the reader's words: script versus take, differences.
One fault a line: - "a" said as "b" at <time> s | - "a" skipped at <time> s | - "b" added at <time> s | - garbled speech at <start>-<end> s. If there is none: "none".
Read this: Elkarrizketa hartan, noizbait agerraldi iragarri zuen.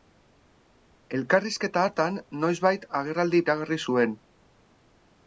none